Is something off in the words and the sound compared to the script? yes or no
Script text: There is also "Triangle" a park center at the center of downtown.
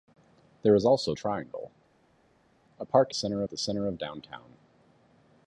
no